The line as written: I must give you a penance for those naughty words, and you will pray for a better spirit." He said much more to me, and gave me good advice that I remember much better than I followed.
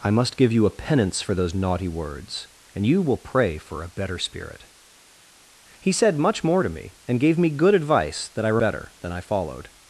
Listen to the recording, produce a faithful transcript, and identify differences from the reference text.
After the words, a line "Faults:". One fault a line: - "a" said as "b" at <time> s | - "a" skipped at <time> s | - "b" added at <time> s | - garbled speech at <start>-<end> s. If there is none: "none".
I must give you a penance for those naughty words, and you will pray for a better spirit." He said much more to me, and gave me good advice that I better than I followed.
Faults:
- "remember much" skipped at 8.6 s